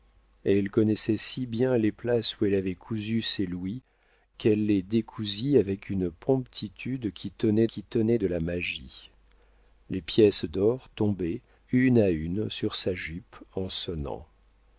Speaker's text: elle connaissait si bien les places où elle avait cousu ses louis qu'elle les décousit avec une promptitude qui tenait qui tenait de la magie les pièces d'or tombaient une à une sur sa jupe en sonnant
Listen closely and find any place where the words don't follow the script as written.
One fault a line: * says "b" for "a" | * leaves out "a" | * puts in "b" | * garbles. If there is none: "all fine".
all fine